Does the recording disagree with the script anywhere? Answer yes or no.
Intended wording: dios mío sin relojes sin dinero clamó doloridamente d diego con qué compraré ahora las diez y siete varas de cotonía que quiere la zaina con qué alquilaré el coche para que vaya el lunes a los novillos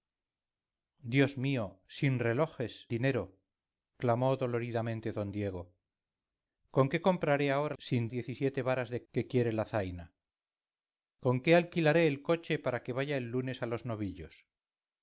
yes